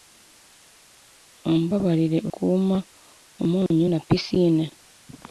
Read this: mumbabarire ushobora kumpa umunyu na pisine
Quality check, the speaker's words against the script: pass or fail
fail